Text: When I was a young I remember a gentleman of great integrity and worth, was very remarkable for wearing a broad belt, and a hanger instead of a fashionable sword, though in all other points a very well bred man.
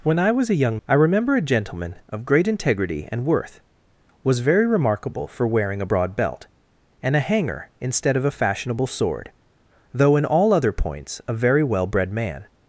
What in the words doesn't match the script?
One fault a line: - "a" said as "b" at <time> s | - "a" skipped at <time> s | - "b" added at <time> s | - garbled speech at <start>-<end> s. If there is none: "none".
none